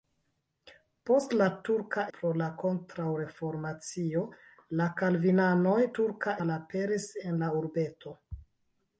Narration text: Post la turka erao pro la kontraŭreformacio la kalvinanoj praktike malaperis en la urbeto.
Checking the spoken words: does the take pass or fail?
fail